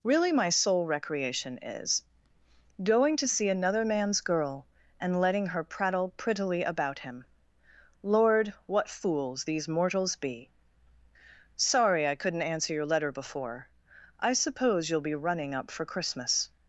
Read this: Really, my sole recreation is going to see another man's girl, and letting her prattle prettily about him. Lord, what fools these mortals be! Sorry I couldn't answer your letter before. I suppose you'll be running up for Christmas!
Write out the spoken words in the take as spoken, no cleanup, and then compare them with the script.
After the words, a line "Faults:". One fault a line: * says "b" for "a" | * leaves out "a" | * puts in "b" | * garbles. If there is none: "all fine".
Really, my sole recreation is going to see another man's girl, and letting her prattle prettily about him. Lord, what fools these mortals be! Sorry I couldn't answer your letter before. I suppose you'll be running up for Christmas!
Faults:
all fine